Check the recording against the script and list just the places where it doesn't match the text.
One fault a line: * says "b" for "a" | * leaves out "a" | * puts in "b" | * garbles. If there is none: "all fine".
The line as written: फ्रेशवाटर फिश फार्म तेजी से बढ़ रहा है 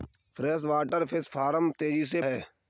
* leaves out "बढ़ रहा"